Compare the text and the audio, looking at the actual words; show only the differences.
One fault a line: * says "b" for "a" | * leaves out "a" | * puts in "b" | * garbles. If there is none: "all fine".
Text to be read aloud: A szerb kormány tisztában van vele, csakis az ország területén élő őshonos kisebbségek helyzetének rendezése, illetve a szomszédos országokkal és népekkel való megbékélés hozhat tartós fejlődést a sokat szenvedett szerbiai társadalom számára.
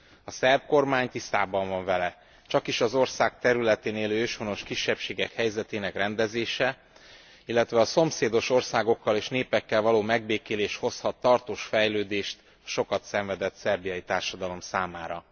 all fine